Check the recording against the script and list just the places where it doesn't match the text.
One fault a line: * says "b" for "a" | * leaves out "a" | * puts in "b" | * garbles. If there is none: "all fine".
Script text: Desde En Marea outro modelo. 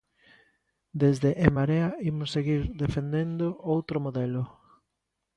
* puts in "imos seguir defendendo"